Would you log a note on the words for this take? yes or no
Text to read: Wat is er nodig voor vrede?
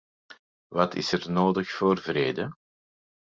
no